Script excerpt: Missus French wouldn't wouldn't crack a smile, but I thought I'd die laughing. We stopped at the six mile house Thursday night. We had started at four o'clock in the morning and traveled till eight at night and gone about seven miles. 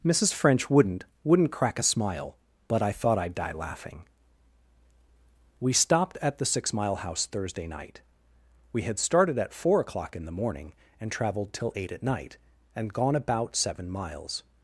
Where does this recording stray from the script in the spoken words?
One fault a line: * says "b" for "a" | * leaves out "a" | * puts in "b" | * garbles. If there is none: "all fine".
all fine